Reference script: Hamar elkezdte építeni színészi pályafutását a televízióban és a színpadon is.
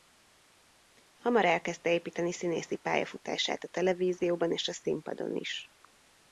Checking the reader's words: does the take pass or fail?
pass